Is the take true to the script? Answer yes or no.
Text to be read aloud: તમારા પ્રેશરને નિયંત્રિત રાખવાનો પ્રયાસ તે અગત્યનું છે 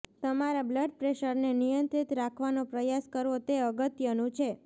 no